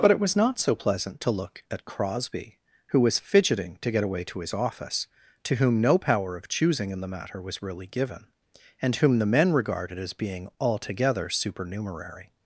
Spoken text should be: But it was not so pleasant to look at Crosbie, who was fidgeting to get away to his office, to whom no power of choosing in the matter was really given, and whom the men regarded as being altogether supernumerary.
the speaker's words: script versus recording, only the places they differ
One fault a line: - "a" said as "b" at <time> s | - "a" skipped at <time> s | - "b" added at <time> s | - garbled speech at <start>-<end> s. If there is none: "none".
none